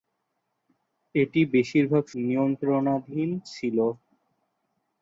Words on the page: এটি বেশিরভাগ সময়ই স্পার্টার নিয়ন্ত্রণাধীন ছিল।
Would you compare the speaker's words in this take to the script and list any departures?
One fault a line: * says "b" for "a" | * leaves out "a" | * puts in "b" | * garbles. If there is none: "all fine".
* leaves out "সময়ই স্পার্টার"